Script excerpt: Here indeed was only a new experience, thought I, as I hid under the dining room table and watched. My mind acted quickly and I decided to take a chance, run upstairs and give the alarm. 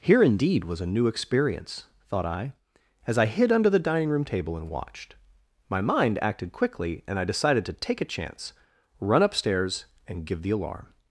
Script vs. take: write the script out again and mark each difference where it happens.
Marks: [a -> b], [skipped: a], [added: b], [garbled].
Here indeed was [skipped: only] a new experience, thought I, as I hid under the dining room table and watched. My mind acted quickly and I decided to take a chance, run upstairs and give the alarm.